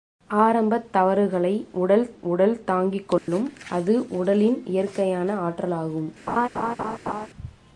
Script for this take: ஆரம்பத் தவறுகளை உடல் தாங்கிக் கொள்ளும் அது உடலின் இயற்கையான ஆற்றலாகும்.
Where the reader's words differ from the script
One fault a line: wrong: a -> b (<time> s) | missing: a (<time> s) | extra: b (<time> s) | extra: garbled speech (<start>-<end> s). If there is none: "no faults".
extra: உடல் (2.2 s)